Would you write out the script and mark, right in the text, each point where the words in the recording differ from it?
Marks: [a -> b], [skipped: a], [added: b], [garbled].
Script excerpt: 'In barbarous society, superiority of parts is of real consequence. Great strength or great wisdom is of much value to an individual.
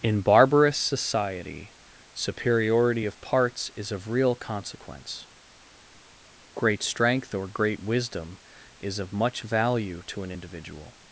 'In barbarous society, superiority of parts is of real consequence. Great strength or great wisdom is of much value to an individual.